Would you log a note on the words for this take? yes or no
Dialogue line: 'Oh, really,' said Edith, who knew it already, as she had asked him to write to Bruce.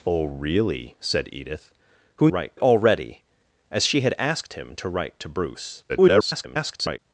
yes